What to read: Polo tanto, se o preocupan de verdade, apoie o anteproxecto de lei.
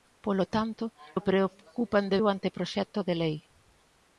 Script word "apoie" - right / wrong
wrong